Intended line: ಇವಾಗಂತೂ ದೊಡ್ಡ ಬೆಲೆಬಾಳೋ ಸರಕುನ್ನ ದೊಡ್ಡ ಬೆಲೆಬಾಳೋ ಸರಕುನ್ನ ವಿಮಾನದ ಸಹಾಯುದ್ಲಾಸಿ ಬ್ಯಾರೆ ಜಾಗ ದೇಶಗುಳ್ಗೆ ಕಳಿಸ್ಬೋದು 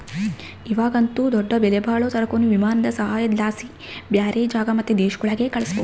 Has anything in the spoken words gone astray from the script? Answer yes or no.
yes